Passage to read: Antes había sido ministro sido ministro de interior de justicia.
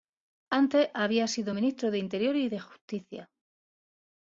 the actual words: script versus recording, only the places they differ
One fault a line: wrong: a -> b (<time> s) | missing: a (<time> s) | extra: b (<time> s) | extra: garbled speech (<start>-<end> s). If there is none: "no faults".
missing: sido ministro (1.9 s)
extra: y (2.4 s)